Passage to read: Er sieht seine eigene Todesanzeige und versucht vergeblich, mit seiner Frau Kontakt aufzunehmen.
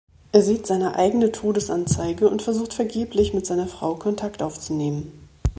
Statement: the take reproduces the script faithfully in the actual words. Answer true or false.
true